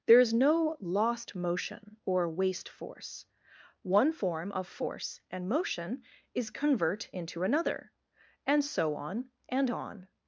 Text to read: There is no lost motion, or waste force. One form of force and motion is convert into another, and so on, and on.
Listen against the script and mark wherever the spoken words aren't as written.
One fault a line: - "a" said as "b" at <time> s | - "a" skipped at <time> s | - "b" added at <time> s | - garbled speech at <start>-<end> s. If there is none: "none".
none